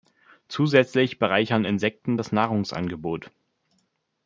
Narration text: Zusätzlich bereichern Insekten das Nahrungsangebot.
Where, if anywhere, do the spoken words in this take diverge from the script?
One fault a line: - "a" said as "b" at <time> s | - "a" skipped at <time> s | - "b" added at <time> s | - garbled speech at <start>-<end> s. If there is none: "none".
none